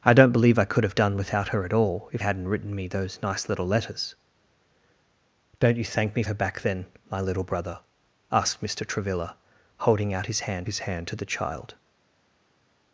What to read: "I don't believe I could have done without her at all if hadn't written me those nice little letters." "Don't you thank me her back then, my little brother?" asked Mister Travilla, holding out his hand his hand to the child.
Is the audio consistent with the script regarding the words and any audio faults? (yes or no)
yes